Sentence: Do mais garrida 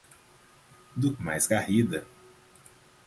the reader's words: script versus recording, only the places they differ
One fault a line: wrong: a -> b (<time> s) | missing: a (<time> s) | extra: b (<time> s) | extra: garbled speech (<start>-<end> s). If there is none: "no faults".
no faults